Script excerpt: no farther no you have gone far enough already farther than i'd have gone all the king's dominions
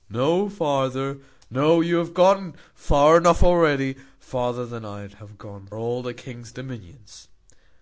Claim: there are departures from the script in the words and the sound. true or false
false